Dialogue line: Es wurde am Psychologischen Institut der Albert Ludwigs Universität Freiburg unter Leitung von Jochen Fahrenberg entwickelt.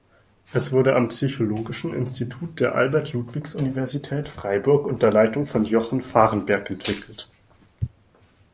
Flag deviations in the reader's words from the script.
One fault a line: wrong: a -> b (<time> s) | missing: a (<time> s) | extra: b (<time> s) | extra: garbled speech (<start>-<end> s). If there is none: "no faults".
no faults